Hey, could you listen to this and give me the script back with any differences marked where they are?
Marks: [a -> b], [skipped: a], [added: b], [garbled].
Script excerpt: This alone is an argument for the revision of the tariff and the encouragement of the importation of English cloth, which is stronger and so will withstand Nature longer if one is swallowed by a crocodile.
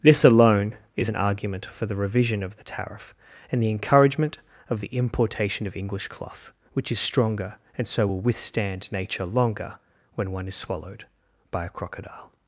This alone is an argument for the revision of the tariff and the encouragement of the importation of English cloth, which is stronger and so will withstand Nature longer [if -> when] one is swallowed by a crocodile.